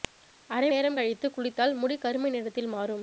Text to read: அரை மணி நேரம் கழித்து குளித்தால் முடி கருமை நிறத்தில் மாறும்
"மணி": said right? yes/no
no